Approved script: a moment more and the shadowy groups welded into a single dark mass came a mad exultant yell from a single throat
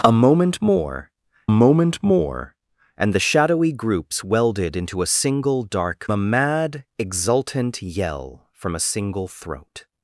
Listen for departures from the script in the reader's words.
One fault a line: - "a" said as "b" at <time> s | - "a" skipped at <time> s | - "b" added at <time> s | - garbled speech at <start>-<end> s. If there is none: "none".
- "moment more" added at 1.5 s
- "mass came" skipped at 6.1 s